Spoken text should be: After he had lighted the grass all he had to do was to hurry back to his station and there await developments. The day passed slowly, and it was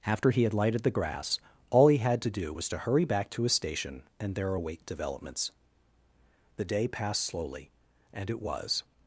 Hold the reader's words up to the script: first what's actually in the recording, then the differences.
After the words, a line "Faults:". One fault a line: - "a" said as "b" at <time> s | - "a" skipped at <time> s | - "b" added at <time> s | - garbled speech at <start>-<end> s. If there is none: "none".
After he had lighted the grass all he had to do was to hurry back to his station and there await developments. The day passed slowly, and it was
Faults:
none